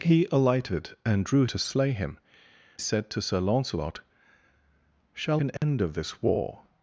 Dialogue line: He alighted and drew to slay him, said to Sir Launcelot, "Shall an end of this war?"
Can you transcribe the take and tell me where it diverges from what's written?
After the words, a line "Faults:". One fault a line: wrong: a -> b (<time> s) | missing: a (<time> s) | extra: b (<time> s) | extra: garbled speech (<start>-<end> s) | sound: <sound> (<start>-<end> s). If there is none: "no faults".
He alighted and drew to slay him, said to Sir Launcelot, "Shall an end of this war?"
Faults:
sound: dropout (5.6-5.6 s)